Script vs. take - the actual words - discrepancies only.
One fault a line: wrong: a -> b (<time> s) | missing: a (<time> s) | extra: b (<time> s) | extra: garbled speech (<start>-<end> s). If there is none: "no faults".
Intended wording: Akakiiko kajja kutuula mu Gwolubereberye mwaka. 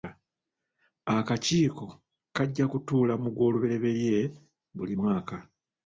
extra: buli (4.8 s)